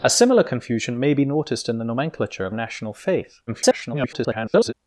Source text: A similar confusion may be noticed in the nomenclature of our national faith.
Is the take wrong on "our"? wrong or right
wrong